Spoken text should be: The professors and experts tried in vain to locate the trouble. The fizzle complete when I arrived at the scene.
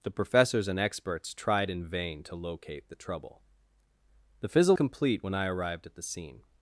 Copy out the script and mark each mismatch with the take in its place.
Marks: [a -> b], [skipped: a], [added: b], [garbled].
The professors and experts tried in vain to locate the trouble. The fizzle complete when I arrived at the scene.